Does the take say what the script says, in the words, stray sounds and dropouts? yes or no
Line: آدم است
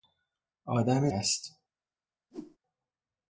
no